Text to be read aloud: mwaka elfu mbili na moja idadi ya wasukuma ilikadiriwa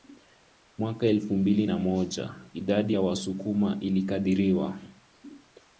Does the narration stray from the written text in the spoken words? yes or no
no